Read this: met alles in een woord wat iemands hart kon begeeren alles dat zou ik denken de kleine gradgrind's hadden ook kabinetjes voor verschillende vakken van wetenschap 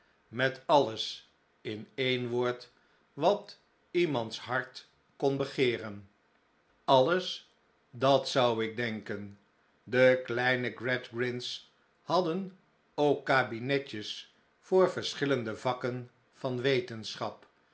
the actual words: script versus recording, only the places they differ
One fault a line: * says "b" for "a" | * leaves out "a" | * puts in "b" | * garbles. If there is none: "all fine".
all fine